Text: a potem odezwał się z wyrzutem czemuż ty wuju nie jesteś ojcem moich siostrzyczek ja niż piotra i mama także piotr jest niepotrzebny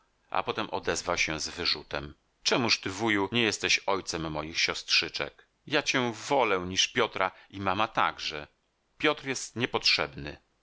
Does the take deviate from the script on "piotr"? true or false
false